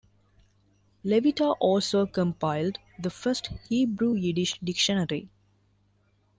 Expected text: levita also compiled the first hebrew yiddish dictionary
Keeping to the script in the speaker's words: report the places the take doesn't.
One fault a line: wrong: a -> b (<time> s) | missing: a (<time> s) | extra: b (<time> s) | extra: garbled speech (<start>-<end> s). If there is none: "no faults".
no faults